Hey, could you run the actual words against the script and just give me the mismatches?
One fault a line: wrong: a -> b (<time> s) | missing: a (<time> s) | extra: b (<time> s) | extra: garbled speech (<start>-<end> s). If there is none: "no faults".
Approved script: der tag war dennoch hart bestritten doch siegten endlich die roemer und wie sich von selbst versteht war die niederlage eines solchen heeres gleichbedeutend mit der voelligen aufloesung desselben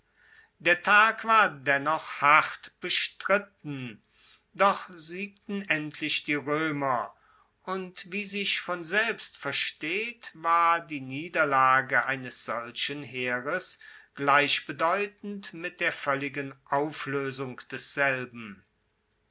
no faults